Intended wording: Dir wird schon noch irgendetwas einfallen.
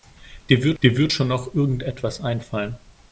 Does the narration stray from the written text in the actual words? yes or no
yes